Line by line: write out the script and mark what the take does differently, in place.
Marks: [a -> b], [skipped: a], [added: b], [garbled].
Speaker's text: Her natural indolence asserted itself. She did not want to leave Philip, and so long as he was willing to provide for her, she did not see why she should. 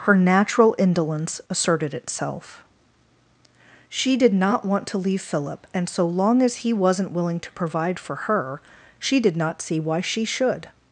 Her natural indolence asserted itself. She did not want to leave Philip, and so long as he [was -> wasn't] willing to provide for her, she did not see why she should.